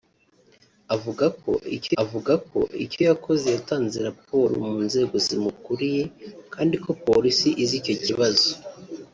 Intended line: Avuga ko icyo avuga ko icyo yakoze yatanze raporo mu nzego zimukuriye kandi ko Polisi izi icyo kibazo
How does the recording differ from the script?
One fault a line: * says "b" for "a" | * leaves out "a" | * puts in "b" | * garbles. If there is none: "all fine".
all fine